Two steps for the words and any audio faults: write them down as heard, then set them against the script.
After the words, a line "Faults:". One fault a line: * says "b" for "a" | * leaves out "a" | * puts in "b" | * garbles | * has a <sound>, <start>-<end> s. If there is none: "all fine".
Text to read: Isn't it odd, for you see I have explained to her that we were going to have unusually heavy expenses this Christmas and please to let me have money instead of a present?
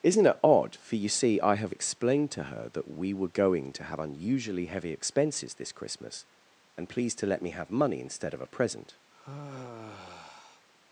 Isn't it odd, for you see I have explained to her that we were going to have unusually heavy expenses this Christmas and please to let me have money instead of a present?
Faults:
* has a sigh, 9.1-10.7 s